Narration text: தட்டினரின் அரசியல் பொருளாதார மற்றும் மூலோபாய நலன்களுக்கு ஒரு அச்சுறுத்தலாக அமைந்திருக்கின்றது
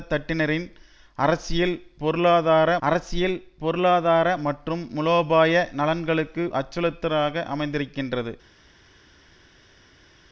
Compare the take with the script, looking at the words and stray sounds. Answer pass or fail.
fail